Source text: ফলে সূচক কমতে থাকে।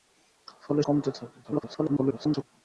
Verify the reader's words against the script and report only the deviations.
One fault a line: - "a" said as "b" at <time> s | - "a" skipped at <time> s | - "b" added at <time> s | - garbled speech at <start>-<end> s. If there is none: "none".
- "সূচক" skipped at 0.8 s
- garbled speech at 1.4-2.4 s